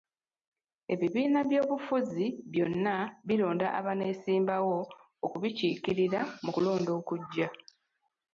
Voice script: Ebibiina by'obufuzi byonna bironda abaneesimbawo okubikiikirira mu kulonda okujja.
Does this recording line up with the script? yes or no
yes